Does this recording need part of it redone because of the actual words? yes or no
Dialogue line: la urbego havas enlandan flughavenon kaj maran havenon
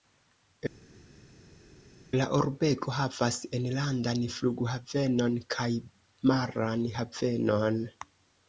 no